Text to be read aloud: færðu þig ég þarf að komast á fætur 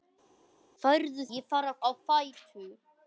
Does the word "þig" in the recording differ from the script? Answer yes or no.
yes